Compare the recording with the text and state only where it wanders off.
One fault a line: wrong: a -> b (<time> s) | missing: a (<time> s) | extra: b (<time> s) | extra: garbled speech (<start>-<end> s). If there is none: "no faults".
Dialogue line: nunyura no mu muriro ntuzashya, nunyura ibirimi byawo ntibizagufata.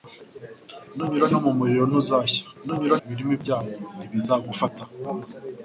no faults